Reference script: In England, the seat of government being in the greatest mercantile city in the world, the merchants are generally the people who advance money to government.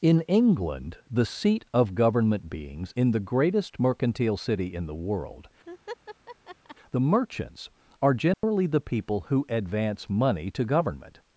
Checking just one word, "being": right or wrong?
wrong